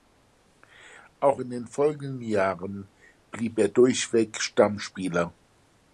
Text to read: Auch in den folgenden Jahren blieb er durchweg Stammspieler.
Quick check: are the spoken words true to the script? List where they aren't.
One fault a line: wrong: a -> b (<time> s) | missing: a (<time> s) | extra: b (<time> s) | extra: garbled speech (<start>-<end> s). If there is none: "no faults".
no faults